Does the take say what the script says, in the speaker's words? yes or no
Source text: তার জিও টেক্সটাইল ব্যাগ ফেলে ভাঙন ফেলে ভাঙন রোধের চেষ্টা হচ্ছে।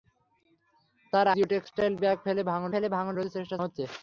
yes